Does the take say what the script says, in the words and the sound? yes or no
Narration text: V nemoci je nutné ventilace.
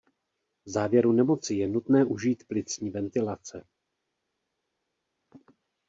no